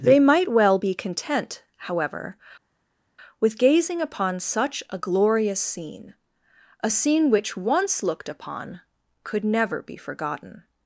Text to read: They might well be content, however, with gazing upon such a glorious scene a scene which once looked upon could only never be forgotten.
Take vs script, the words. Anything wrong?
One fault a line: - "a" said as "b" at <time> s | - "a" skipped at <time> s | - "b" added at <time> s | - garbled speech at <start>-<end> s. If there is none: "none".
- "only" skipped at 9.4 s